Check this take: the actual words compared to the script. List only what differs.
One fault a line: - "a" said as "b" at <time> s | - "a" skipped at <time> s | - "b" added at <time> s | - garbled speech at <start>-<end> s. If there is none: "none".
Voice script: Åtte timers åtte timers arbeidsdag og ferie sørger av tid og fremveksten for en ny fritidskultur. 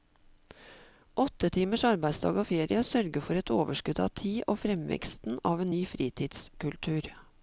- "åtte timers" skipped at 1.8 s
- "for et overskudd" added at 3.2 s
- "for" said as "av" at 5.5 s